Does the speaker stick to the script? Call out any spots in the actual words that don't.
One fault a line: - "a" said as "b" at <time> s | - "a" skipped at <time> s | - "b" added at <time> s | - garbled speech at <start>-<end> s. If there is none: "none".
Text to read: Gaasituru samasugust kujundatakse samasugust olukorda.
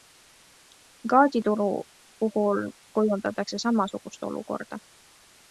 - "samasugust" said as "puhul" at 2.2 s